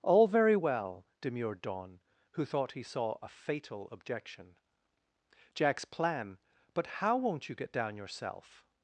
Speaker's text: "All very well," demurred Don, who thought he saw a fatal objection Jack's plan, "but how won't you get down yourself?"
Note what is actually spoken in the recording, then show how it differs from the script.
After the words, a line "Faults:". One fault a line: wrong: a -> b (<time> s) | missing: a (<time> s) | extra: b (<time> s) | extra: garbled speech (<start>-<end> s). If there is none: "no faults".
"All very well," demurred Don, who thought he saw a fatal objection Jack's plan, "but how won't you get down yourself?"
Faults:
no faults